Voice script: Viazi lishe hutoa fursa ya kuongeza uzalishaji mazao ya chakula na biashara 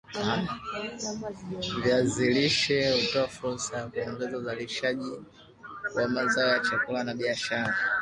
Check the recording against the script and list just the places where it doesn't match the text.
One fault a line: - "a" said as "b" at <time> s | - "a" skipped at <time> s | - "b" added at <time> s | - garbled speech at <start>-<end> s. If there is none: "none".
- "wa" added at 6.0 s